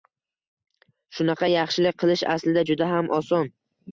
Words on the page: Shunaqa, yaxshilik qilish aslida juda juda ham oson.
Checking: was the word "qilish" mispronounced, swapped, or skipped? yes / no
no